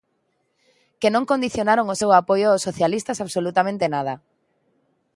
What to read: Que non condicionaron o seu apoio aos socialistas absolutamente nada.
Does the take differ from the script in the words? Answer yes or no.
no